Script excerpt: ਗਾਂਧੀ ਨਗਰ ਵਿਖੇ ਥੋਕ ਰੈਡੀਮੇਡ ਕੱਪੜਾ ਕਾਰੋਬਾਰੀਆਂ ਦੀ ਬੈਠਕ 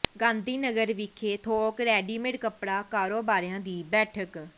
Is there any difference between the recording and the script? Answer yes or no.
no